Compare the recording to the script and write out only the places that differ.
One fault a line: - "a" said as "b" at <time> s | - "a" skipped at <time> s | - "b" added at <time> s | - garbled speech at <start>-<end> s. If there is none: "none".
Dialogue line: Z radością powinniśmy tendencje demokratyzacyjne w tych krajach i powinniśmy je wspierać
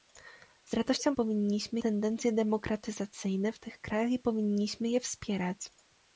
none